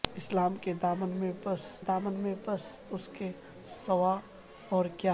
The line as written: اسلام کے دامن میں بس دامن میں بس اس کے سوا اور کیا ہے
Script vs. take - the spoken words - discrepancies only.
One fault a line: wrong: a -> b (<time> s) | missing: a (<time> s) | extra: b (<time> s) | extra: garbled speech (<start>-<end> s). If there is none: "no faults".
no faults